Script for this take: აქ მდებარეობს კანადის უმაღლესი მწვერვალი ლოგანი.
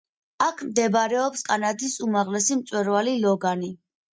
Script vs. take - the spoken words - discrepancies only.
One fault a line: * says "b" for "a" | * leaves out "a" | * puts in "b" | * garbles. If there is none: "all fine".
all fine